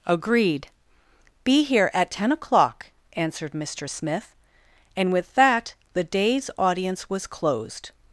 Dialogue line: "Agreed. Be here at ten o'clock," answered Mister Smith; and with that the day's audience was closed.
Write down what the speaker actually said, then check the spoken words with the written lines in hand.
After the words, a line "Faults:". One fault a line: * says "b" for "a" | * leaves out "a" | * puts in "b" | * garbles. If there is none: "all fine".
"Agreed. Be here at ten o'clock," answered Mister Smith; and with that the day's audience was closed.
Faults:
all fine